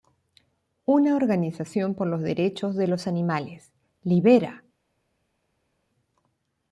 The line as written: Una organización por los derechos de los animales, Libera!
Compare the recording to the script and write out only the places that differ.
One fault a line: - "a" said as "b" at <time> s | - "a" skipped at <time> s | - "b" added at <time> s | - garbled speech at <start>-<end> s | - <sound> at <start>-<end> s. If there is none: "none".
none